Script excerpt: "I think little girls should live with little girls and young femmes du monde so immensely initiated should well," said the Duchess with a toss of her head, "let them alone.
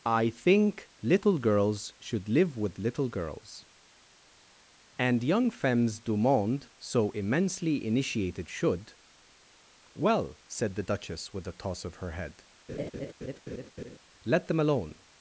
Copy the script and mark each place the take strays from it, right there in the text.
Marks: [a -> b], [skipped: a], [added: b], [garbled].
"I think little girls should live with little girls and young femmes du monde so immensely initiated should well," said the Duchess with a toss of her head, "let them alone.